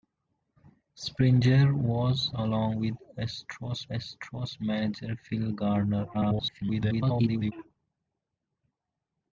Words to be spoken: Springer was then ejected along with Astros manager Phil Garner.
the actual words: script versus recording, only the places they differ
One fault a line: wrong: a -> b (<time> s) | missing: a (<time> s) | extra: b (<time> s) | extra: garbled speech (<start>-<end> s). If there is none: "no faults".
missing: then ejected (2.3 s)
extra: Astros (3.9 s)
extra: garbled speech (6.1-7.5 s)